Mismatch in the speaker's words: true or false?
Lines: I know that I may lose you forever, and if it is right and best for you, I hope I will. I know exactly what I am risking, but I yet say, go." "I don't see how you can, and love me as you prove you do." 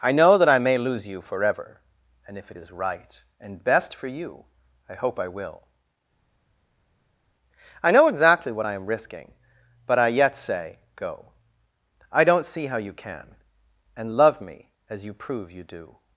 false